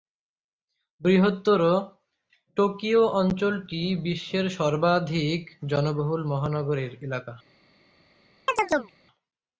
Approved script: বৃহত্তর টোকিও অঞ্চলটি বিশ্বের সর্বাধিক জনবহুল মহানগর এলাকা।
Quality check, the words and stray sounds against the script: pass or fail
fail